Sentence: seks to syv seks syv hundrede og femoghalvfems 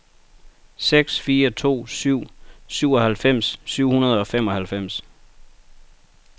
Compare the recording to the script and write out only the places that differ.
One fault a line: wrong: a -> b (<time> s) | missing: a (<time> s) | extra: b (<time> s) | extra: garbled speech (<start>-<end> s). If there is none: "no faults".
extra: fire (1.2 s)
wrong: seks -> syvoghalvfems (2.7 s)